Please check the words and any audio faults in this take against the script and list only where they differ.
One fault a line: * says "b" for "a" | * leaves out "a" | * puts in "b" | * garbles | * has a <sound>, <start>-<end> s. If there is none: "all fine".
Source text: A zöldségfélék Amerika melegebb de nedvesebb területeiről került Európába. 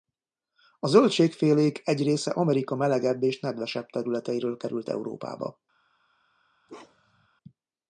* puts in "egy része"
* says "és" for "de"
* has a bark, 6.7-7.3 s